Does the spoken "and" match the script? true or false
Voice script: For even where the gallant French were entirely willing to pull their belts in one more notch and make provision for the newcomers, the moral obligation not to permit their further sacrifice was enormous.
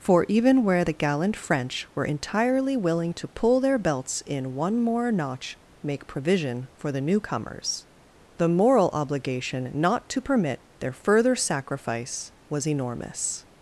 false